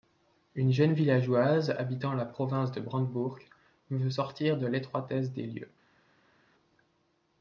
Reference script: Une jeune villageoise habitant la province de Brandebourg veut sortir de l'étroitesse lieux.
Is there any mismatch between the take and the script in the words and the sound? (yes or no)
yes